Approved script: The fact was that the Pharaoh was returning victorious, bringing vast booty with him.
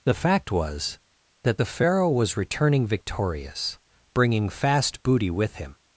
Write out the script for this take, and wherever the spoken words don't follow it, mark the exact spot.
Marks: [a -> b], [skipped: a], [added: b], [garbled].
The fact was that the Pharaoh was returning victorious, bringing [vast -> fast] booty with him.